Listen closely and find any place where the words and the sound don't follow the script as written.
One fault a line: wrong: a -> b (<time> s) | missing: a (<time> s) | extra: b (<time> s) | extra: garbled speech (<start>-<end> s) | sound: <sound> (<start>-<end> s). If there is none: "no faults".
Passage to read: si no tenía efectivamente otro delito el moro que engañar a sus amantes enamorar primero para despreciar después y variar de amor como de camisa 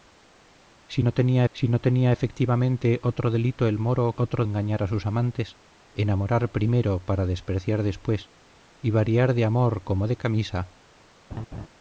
extra: si no tenía (1.5 s)
wrong: que -> otro (4.2 s)
sound: laugh (11.3-11.7 s)